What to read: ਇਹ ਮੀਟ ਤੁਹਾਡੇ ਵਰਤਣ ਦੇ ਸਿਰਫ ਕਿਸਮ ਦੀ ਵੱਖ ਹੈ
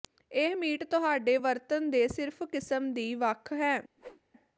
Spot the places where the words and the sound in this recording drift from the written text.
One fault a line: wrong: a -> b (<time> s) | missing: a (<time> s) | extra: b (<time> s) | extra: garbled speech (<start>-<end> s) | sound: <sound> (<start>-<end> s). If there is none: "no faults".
sound: whoosh (4.0-4.2 s)